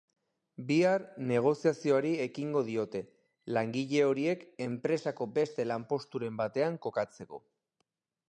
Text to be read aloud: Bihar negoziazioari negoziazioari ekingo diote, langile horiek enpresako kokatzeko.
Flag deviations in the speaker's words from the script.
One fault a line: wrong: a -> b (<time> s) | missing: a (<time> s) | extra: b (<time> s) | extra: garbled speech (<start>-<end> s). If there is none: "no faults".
missing: negoziazioari (2.1 s)
extra: beste lanposturen batean (5.4 s)